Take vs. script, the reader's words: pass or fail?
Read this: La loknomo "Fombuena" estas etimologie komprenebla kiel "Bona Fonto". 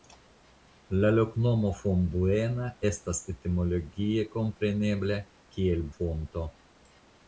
fail